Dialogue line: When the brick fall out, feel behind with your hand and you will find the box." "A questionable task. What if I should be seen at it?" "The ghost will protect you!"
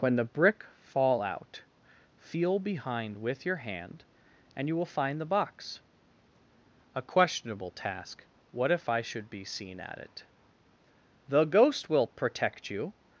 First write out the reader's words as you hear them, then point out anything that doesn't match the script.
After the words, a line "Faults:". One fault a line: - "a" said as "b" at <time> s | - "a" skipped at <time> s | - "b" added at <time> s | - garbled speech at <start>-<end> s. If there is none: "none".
When the brick fall out, feel behind with your hand and you will find the box." "A questionable task. What if I should be seen at it?" "The ghost will protect you!"
Faults:
none